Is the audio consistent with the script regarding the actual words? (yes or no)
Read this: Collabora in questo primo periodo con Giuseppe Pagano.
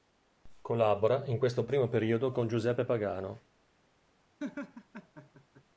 yes